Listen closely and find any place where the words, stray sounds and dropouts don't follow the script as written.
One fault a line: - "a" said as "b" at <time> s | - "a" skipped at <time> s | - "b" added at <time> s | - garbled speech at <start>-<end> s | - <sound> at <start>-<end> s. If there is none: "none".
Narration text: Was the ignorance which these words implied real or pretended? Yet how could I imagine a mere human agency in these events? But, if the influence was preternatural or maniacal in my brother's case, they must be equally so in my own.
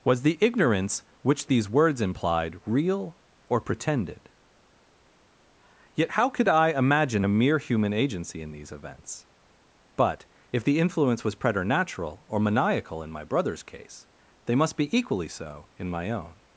none